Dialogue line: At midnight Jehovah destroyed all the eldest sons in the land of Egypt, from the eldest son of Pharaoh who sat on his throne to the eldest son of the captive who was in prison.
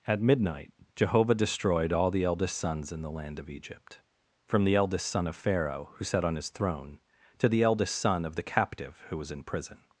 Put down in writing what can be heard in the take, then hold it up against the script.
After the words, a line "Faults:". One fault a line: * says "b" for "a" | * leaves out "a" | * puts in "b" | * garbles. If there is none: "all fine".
At midnight Jehovah destroyed all the eldest sons in the land of Egypt, from the eldest son of Pharaoh who sat on his throne to the eldest son of the captive who was in prison.
Faults:
all fine